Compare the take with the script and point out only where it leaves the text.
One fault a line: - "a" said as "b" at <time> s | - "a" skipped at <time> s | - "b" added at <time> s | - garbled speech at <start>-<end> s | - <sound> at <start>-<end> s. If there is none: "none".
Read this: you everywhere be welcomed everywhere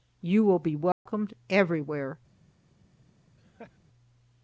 - "everywhere" said as "will" at 0.4 s
- dropout at 0.9-1.1 s
- laugh at 3.4-3.8 s